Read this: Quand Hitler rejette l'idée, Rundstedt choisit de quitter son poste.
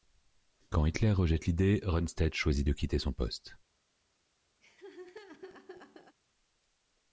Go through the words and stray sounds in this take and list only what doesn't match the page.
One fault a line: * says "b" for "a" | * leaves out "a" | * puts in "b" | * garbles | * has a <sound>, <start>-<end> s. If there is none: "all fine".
* has a laugh, 4.6-6.2 s